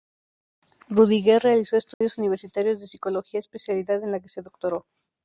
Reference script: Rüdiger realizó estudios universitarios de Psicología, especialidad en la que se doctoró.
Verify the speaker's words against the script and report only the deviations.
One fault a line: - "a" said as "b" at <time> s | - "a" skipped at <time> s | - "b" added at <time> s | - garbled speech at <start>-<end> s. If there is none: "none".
none